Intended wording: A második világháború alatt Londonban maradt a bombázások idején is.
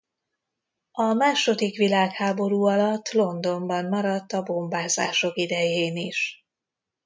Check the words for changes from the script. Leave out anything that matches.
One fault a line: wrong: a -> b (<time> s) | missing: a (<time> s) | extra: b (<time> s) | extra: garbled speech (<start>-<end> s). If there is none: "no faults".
no faults